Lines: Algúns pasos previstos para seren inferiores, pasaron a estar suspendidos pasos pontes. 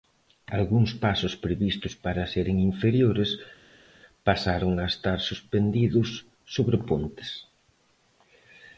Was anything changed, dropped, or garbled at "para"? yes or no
no